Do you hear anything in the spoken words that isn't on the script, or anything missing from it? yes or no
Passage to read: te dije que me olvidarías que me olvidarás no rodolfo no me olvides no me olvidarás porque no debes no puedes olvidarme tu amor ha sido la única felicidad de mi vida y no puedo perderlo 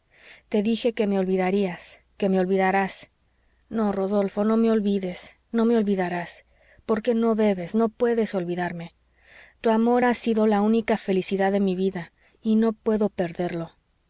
no